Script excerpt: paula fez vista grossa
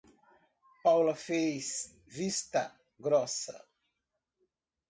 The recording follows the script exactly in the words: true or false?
true